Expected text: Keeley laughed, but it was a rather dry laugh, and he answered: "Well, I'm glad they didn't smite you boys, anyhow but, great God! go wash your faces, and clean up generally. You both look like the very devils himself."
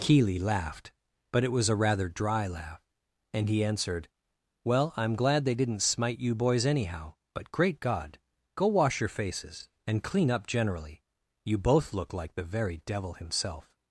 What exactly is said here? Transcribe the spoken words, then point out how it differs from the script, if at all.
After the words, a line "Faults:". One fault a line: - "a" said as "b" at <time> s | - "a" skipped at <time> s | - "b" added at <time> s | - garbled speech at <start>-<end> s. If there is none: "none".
Keeley laughed, but it was a rather dry laugh, and he answered: "Well, I'm glad they didn't smite you boys, anyhow but, great God! go wash your faces, and clean up generally. You both look like the very devil himself."
Faults:
- "devils" said as "devil" at 12.8 s